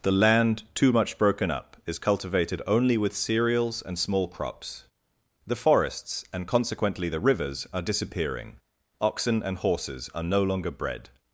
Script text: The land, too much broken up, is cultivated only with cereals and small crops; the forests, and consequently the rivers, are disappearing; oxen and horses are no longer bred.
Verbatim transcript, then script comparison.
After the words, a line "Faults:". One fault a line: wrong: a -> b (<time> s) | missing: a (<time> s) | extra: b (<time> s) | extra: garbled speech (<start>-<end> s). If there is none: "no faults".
The land, too much broken up, is cultivated only with cereals and small crops; the forests, and consequently the rivers, are disappearing; oxen and horses are no longer bred.
Faults:
no faults